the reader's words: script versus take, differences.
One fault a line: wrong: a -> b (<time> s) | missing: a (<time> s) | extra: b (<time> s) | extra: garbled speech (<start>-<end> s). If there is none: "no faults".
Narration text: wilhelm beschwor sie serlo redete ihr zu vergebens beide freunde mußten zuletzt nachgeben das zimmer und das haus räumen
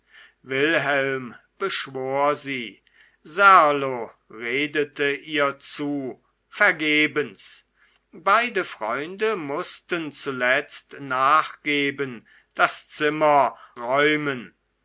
missing: und das haus (13.6 s)